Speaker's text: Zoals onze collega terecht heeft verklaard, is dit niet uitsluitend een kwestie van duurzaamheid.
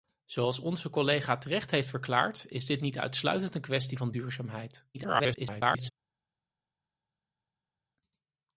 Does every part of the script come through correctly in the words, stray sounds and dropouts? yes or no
no